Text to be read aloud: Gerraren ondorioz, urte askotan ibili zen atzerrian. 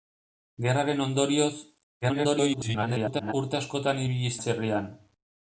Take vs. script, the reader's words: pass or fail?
fail